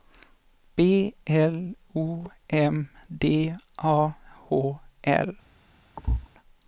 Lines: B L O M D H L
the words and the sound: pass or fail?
fail